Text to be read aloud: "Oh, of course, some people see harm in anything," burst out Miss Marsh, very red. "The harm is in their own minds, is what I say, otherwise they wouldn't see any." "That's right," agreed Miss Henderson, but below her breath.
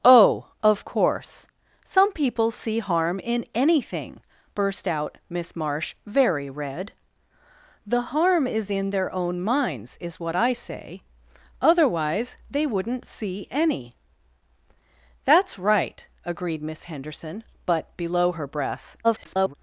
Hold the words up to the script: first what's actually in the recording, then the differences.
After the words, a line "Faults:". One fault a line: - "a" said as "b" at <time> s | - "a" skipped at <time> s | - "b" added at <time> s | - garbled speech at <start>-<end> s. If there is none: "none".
"Oh, of course, some people see harm in anything," burst out Miss Marsh, very red. "The harm is in their own minds, is what I say, otherwise they wouldn't see any." "That's right," agreed Miss Henderson, but below her breath. [garbled]
Faults:
- garbled speech at 19.0-19.5 s